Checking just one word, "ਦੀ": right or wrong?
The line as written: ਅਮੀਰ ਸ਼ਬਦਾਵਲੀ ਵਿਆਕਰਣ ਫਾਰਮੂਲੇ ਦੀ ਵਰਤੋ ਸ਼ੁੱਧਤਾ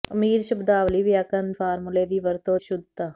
right